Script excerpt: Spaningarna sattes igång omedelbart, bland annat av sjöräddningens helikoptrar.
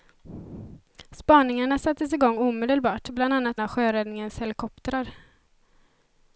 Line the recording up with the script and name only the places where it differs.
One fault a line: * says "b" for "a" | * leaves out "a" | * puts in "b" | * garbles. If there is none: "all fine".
all fine